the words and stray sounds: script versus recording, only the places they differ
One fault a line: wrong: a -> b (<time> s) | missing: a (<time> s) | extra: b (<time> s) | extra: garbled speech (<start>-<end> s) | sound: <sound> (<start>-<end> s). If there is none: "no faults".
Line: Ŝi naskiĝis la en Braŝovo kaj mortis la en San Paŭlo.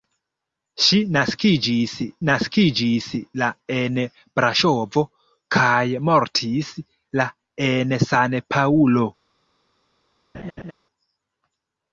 extra: naskiĝis (2.3 s)
sound: laugh (10.3-10.7 s)